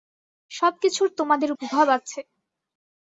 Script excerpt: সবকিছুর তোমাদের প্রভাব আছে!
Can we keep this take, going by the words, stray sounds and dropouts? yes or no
yes